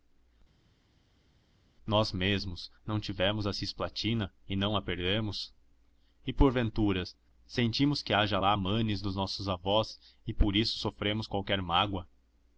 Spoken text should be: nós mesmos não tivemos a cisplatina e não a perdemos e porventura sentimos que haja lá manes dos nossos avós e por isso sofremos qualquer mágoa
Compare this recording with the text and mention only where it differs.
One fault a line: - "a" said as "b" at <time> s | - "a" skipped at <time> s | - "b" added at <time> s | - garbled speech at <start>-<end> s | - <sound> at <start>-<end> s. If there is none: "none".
none